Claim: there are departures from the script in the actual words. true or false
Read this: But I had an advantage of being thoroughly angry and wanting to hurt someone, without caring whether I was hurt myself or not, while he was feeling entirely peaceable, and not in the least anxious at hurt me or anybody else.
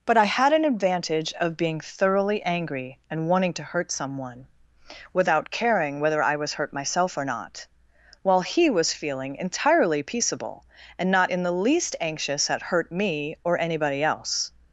false